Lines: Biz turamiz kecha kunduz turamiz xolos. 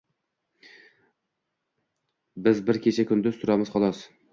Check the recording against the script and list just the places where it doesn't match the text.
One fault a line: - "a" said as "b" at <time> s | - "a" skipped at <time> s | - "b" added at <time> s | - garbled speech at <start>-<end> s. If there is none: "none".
- "turamiz" said as "bir" at 2.7 s